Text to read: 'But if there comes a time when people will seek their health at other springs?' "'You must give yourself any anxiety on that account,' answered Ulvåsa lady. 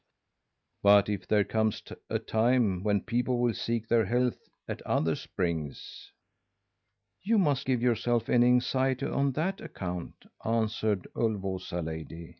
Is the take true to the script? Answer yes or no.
yes